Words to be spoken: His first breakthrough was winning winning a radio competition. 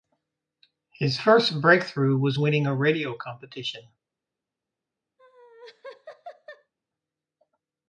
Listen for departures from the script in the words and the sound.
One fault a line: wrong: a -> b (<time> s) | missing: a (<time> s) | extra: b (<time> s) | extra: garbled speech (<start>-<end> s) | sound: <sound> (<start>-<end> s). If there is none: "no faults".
missing: winning (2.7 s)
sound: laugh (5.2-6.7 s)